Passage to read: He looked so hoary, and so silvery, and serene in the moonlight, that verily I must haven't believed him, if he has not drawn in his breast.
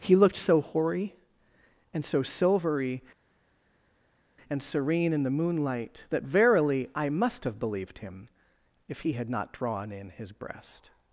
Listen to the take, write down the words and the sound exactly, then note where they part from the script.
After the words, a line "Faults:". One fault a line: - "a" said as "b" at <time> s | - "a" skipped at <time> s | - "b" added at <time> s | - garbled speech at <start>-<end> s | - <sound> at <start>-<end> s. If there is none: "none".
He looked so hoary, and so silvery, and serene in the moonlight, that verily I must have believed him, if he had not drawn in his breast.
Faults:
- "haven't" said as "have" at 7.4 s
- "has" said as "had" at 9.1 s